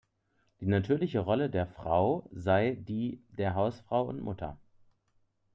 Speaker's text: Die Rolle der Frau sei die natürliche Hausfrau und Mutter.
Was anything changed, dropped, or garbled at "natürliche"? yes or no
yes